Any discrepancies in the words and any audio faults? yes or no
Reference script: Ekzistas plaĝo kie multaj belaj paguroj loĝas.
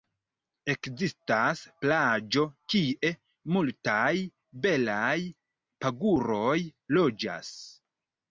no